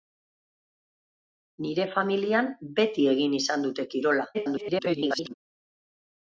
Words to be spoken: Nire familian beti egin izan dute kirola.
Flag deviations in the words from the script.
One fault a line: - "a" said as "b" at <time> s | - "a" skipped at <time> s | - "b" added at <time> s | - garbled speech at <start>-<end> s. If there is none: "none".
- garbled speech at 4.3-5.3 s